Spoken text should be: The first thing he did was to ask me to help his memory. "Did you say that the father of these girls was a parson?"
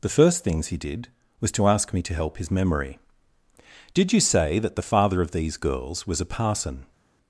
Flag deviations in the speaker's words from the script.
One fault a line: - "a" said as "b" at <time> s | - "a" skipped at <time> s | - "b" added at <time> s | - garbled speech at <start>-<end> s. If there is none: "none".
- "thing" said as "things" at 0.4 s